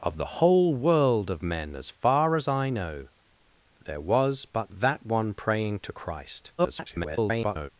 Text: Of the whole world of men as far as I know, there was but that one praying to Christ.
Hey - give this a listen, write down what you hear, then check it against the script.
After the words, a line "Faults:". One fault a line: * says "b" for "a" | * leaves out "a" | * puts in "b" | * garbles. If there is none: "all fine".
Of the whole world of men as far as I know, there was but that one praying to Christ. [garbled]
Faults:
* garbles